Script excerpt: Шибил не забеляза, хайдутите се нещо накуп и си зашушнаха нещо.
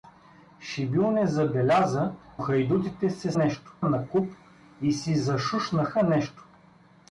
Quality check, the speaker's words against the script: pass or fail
pass